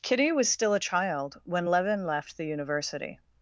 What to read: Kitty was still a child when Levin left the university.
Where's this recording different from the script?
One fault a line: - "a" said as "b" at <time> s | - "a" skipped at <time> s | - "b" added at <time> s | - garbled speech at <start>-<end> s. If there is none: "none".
none